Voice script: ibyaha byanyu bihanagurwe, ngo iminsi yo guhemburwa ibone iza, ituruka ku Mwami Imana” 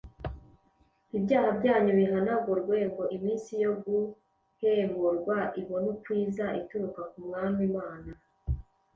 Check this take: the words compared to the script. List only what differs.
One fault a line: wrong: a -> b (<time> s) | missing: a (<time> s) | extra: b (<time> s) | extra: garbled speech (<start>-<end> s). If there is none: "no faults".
extra: uko (5.9 s)